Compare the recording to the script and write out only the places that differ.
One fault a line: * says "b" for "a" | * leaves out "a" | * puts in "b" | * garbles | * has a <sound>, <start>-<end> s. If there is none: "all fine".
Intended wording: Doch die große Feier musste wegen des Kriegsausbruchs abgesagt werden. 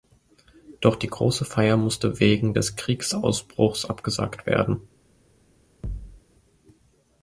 * has a thud, 5.8-6.2 s